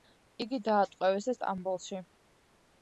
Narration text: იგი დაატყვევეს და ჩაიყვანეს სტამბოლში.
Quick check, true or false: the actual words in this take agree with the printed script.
false